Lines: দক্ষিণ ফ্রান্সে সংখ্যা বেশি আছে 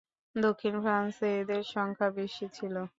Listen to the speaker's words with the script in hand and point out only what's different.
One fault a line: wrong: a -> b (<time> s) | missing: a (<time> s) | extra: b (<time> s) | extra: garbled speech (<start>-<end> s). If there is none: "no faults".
extra: এদের (1.4 s)
wrong: আছে -> ছিল (2.5 s)